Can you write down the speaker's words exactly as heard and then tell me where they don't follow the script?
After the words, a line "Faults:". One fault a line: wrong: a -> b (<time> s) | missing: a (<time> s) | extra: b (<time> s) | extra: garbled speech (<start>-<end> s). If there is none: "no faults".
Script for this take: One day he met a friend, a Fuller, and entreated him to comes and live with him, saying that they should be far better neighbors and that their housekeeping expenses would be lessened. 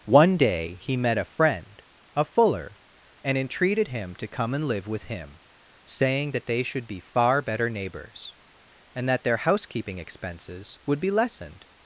One day he met a friend, a Fuller, and entreated him to come and live with him, saying that they should be far better neighbors and that their housekeeping expenses would be lessened.
Faults:
wrong: comes -> come (4.3 s)